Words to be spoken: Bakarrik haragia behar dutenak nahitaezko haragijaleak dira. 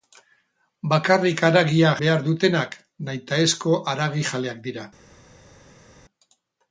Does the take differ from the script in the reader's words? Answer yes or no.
no